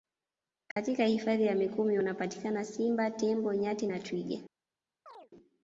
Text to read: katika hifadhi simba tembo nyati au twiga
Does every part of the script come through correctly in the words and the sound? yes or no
no